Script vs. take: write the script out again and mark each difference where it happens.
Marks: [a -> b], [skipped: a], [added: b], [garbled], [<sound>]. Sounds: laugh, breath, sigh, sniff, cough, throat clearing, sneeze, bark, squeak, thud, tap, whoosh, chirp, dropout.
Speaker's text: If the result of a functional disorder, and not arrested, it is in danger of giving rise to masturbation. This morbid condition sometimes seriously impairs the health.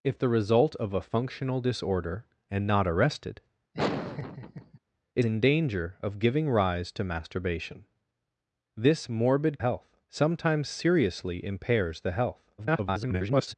If the result of a functional disorder, and not arrested, [laugh] it [skipped: is] in danger of giving rise to masturbation. This morbid [condition -> health] sometimes seriously impairs the health. [garbled]